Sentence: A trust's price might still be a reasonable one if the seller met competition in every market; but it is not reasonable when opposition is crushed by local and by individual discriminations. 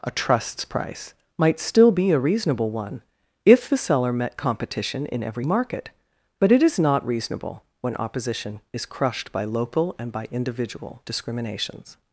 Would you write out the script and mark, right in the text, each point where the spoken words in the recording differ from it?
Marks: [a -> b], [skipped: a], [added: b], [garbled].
A trust's price might still be a reasonable one if the seller met competition in every market; but it is not reasonable when opposition is crushed by local and by individual discriminations.